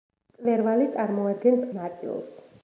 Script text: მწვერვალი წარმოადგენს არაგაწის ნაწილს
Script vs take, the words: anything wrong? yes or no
yes